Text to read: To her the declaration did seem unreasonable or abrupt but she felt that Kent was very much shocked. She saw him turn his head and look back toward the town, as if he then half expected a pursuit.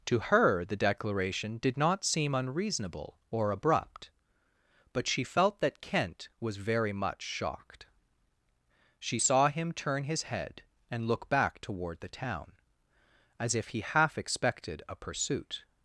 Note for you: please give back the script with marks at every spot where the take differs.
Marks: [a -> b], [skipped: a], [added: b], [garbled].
To her the declaration did [added: not] seem unreasonable or abrupt but she felt that Kent was very much shocked. She saw him turn his head and look back toward the town, as if he [skipped: then] half expected a pursuit.